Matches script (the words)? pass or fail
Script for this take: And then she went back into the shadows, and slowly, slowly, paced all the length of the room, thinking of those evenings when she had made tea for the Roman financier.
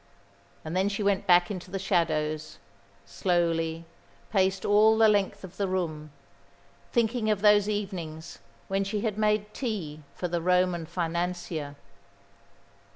fail